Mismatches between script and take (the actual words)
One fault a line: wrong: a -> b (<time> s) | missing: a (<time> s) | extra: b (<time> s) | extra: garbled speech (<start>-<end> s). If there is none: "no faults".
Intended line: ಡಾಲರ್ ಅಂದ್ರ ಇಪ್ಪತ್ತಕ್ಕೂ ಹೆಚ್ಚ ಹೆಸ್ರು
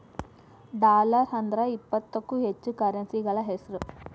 extra: ಕರೆನ್ಸಿಗಳ (2.8 s)